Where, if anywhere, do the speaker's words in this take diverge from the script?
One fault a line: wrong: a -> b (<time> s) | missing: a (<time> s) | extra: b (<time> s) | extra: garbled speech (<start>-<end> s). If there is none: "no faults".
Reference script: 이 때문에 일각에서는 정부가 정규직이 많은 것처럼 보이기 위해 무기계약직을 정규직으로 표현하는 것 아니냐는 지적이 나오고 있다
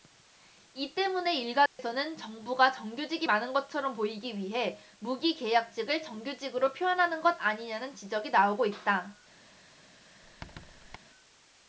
no faults